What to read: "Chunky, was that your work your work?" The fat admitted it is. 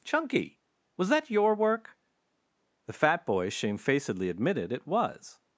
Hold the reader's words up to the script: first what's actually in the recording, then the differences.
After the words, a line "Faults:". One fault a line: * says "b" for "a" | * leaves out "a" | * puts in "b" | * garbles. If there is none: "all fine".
"Chunky, was that your work?" The fat boy shamefacedly admitted it was.
Faults:
* says "The fat boy shamefacedly" for "your work The fat"
* says "was" for "is"